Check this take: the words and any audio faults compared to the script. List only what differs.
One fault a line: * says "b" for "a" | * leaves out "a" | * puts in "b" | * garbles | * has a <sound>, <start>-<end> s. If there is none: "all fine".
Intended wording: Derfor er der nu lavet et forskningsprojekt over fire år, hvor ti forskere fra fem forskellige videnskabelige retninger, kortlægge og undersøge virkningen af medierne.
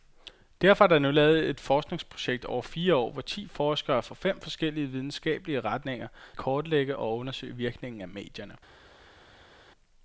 all fine